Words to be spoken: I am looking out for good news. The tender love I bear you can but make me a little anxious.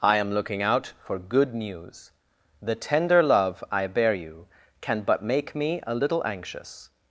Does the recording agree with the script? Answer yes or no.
yes